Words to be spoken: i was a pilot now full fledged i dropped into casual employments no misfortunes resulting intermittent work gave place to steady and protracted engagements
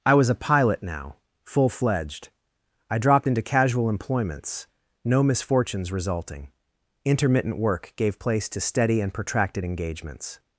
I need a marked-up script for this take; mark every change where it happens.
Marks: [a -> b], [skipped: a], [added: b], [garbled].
i was a pilot now full fledged i dropped into casual employments no misfortunes resulting intermittent work gave place to steady and protracted engagements